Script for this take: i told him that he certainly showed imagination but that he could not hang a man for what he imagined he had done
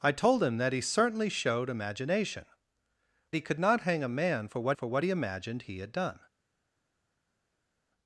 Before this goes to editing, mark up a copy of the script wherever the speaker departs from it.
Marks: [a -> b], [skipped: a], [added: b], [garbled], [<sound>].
i told him that he certainly showed imagination [skipped: but that] he could not hang a man for what [added: for what] he imagined he had done